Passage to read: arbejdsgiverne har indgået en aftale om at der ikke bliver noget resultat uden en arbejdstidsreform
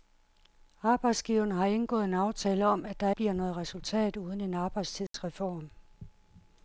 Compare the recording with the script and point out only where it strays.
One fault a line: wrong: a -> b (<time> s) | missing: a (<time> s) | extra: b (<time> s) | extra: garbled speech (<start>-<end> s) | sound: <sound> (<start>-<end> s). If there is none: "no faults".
missing: ikke (3.1 s)
sound: dropout (5.1-5.1 s)